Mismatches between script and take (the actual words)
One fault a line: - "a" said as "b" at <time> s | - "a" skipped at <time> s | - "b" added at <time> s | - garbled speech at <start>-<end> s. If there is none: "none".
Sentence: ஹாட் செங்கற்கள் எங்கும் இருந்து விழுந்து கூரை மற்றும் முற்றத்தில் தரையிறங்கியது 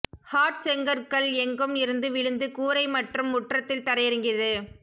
none